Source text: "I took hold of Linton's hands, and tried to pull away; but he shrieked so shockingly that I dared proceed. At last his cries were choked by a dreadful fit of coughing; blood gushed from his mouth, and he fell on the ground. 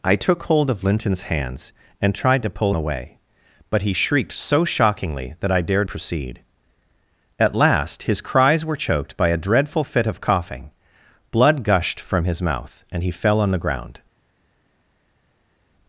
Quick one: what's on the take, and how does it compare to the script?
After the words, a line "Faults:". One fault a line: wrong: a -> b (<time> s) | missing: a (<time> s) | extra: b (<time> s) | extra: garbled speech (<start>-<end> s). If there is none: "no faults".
"I took hold of Linton's hands, and tried to pull away; but he shrieked so shockingly that I dared proceed. At last his cries were choked by a dreadful fit of coughing; blood gushed from his mouth, and he fell on the ground.
Faults:
no faults